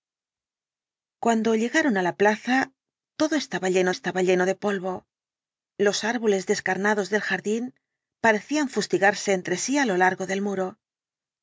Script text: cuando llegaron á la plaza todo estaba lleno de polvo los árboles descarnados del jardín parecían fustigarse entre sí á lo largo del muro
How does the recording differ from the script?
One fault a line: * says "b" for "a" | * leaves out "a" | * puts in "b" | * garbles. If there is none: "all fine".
* puts in "estaba lleno"